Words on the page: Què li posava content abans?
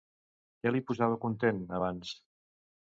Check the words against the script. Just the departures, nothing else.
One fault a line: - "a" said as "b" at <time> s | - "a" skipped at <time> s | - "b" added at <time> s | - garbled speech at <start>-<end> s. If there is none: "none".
none